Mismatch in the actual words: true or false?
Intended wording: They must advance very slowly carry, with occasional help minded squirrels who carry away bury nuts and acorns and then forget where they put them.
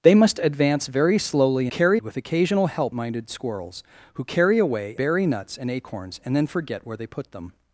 false